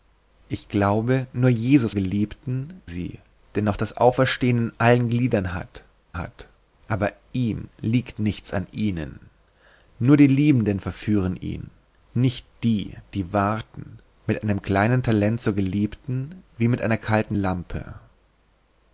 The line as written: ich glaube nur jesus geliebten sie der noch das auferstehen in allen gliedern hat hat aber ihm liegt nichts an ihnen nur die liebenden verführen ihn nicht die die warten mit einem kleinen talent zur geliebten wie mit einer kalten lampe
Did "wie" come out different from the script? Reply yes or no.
no